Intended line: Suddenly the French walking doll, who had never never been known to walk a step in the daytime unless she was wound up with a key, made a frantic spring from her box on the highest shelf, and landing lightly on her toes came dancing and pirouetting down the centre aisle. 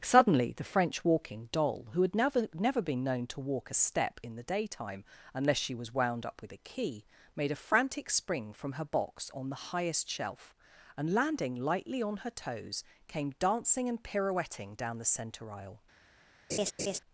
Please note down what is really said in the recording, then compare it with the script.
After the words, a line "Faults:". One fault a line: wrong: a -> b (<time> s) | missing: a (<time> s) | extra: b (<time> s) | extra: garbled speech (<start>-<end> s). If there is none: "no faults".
Suddenly the French walking doll, who had never never been known to walk a step in the daytime unless she was wound up with a key, made a frantic spring from her box on the highest shelf, and landing lightly on her toes came dancing and pirouetting down the centre aisle.
Faults:
no faults